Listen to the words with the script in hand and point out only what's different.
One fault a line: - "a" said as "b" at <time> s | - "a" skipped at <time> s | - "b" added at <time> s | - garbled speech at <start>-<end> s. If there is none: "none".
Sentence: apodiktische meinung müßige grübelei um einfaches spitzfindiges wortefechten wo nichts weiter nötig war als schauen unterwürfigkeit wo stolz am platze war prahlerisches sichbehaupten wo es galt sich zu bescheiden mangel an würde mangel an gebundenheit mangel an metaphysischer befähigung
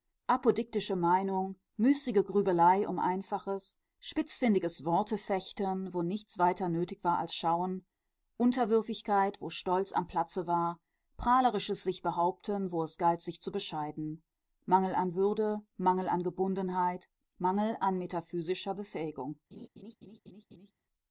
none